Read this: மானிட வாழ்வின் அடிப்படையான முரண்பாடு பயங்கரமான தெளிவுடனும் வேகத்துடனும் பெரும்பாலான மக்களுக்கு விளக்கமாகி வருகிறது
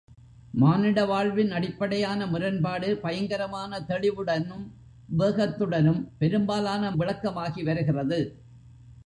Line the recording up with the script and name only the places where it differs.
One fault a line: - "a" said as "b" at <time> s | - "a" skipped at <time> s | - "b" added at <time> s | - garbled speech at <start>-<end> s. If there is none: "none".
- "மக்களுக்கு" skipped at 6.9 s